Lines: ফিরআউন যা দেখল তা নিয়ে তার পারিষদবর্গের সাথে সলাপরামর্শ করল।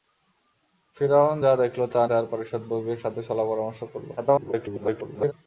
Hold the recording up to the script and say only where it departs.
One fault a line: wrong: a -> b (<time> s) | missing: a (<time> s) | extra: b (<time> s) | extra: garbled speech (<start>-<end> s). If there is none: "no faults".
missing: নিয়ে (2.0 s)
extra: garbled speech (4.2-5.3 s)